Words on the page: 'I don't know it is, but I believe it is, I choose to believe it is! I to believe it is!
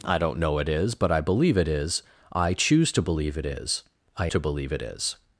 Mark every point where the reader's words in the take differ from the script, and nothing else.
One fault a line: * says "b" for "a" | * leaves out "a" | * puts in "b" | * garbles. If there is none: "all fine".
all fine